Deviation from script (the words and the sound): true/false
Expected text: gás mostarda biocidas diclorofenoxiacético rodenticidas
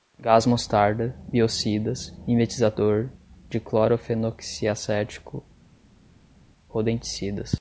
true